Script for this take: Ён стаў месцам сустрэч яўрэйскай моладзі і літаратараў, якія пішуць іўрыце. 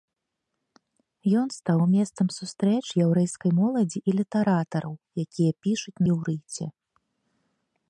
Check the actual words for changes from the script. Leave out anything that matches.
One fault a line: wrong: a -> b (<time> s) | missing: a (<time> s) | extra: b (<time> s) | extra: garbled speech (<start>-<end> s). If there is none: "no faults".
no faults